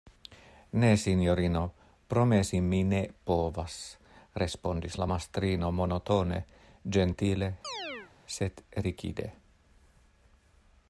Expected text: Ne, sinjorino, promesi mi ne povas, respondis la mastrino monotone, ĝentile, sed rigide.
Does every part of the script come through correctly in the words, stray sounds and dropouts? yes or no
no